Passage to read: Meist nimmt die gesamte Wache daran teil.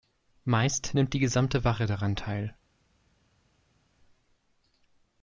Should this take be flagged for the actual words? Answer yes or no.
no